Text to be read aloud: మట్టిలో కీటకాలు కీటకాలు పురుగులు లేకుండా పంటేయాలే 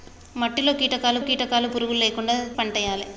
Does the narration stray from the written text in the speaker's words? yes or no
no